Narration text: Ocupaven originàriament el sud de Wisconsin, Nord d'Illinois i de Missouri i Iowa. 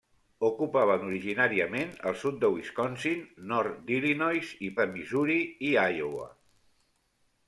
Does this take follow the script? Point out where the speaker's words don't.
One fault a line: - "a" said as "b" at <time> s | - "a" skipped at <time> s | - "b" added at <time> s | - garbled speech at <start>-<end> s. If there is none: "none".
none